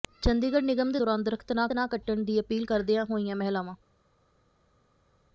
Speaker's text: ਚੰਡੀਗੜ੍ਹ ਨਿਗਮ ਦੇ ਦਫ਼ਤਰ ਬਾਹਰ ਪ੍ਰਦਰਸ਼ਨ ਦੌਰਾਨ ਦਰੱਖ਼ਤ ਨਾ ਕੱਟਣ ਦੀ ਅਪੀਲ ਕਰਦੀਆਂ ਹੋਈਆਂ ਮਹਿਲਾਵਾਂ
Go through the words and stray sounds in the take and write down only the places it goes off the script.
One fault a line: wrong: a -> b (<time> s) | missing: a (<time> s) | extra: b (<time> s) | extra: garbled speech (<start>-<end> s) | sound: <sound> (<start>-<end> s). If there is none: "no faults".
missing: ਦਫ਼ਤਰ ਬਾਹਰ ਪ੍ਰਦਰਸ਼ਨ (1.0 s)
extra: ਨਾ (1.7 s)